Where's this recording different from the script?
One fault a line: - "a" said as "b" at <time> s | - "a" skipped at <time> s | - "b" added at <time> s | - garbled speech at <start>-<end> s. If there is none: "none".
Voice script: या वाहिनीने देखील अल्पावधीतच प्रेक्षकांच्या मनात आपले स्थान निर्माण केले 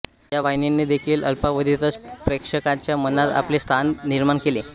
none